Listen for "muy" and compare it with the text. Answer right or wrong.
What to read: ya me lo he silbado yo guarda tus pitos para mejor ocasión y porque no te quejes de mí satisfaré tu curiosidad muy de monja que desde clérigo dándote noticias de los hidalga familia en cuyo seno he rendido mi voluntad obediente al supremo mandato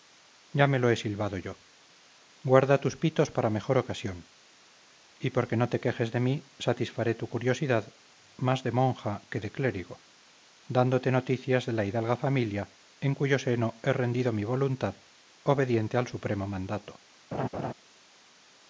wrong